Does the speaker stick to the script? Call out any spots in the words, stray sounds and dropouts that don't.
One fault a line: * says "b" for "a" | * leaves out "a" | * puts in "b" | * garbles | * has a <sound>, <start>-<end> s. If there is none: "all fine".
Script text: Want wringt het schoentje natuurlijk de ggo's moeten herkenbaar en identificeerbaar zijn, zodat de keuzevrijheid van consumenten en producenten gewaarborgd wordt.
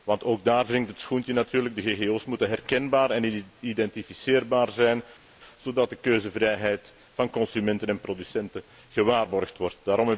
* puts in "ook daar"